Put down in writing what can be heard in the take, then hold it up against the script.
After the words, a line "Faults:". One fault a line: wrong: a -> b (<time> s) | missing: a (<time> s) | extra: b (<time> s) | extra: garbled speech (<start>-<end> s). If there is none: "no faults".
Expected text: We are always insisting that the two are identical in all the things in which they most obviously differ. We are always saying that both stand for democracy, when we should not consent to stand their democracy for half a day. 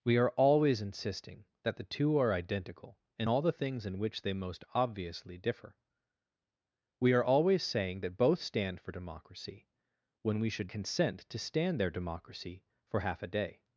We are always insisting that the two are identical in all the things in which they most obviously differ. We are always saying that both stand for democracy, when we should consent to stand their democracy for half a day.
Faults:
missing: not (10.7 s)